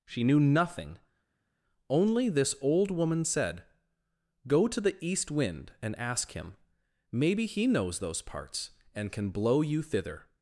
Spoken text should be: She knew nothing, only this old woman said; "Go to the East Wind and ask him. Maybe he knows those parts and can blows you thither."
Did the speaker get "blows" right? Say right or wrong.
wrong